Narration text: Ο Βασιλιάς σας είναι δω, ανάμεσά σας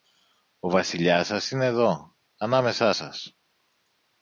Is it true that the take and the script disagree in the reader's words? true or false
false